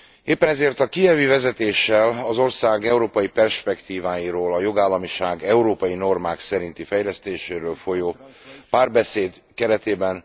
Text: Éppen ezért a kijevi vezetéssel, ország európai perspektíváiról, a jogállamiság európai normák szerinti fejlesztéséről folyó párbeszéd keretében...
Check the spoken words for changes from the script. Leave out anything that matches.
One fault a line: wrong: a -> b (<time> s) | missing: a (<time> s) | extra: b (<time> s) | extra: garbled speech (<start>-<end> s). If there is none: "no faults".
extra: az (2.3 s)